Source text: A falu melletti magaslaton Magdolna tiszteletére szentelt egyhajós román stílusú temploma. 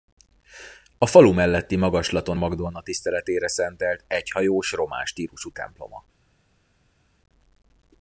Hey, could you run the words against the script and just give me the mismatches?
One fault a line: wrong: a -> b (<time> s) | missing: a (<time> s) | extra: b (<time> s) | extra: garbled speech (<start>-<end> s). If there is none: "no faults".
no faults